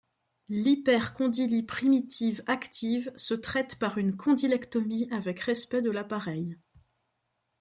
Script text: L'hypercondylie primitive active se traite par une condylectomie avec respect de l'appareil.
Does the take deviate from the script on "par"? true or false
false